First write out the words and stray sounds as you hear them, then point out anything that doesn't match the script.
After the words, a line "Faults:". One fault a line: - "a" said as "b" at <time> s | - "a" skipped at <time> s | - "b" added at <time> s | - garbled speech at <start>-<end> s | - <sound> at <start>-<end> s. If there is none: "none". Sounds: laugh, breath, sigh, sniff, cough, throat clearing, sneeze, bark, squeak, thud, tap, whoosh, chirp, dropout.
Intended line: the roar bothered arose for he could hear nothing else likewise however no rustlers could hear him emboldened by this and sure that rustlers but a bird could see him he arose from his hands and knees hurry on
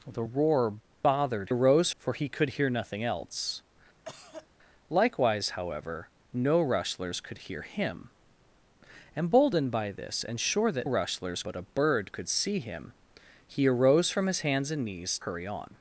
the roar bothered arose for he could hear nothing else likewise however no rustlers could hear him emboldened by this and sure that rustlers but a bird could see him he arose from his hands and knees hurry on
Faults:
- cough at 4.1-4.5 s